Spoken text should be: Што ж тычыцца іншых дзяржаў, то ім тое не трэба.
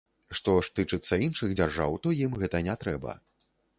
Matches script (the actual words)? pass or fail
fail